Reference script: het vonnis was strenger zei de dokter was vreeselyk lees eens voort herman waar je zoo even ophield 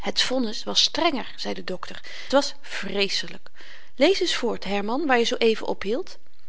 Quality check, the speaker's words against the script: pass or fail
pass